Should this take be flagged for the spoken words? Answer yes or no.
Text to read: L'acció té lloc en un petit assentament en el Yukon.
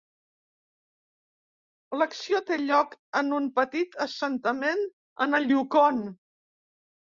no